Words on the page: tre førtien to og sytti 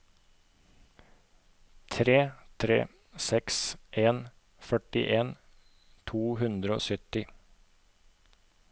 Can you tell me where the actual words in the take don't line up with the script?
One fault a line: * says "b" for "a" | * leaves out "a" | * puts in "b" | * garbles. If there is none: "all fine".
* puts in "tre seks en"
* puts in "hundre"